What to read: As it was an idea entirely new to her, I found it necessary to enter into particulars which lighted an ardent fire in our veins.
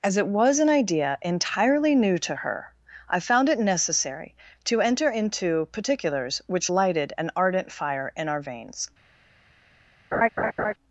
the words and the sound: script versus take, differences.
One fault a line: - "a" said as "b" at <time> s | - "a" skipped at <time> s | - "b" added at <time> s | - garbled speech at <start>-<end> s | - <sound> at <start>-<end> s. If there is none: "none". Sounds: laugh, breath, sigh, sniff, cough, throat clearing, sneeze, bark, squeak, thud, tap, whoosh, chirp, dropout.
- laugh at 10.1-10.7 s